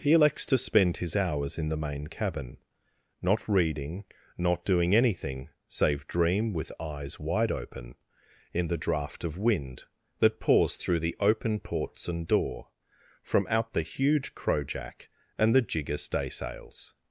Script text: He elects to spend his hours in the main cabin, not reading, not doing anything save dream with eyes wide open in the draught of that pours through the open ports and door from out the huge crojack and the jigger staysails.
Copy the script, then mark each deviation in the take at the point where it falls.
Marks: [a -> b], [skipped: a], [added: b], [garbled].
He elects to spend his hours in the main cabin, not reading, not doing anything save dream with eyes wide open in the draught of [added: wind] that pours through the open ports and door from out the huge crojack and the jigger staysails.